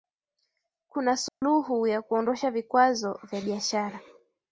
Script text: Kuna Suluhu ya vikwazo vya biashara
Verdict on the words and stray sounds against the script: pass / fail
fail